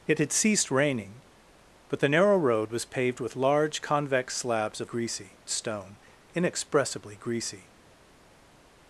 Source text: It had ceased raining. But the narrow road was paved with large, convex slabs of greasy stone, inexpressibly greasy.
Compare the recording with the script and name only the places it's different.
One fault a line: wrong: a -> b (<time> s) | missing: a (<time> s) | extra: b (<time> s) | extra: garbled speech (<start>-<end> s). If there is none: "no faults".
no faults